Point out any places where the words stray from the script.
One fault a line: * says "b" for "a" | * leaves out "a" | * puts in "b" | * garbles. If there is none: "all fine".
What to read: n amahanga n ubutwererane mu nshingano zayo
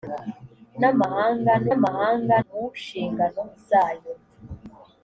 * says "amahanga" for "ubutwererane"